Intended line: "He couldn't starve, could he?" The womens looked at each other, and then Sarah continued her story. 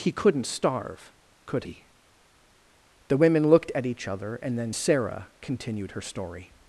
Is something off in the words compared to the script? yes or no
yes